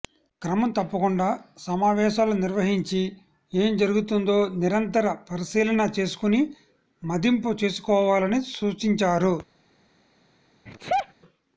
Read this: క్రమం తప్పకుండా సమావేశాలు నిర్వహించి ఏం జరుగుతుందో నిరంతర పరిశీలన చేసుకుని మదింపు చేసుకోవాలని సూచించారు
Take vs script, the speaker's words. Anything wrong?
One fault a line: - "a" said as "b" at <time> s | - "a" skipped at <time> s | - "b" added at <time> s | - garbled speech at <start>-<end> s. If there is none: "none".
none